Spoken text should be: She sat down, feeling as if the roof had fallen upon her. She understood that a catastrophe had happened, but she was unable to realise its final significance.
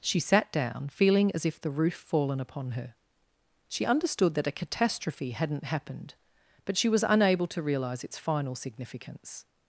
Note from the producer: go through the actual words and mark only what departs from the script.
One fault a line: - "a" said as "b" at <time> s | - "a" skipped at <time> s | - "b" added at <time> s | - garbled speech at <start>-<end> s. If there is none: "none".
- "had" skipped at 1.9 s
- "had" said as "hadn't" at 5.3 s